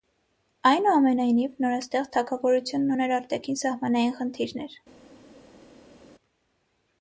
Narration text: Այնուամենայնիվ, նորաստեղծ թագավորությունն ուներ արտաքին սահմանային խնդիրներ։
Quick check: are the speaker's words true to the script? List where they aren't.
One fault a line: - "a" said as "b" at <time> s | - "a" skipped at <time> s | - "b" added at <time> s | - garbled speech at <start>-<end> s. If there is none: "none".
none